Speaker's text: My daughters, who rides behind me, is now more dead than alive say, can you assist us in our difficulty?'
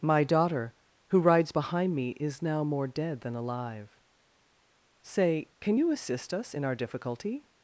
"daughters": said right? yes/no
no